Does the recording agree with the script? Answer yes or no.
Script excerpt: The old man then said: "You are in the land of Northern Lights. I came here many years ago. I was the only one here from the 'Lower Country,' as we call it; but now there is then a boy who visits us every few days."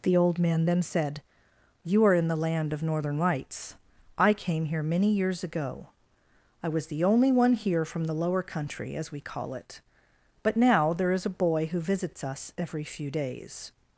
no